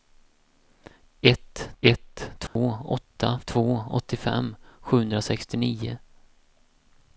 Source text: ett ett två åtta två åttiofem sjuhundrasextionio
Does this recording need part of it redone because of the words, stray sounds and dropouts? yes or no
yes